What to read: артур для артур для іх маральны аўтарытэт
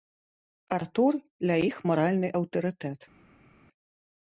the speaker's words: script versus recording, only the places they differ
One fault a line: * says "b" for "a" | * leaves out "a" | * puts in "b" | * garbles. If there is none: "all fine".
* leaves out "артур для"